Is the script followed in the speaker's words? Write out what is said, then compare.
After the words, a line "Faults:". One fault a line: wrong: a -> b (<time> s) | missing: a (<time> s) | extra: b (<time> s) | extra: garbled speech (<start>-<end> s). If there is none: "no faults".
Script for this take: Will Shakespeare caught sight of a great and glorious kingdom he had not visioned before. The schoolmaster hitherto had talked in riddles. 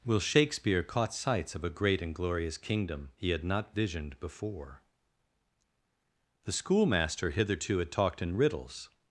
Will Shakespeare caught sights of a great and glorious kingdom he had not visioned before. The schoolmaster hitherto had talked in riddles.
Faults:
wrong: sight -> sights (1.1 s)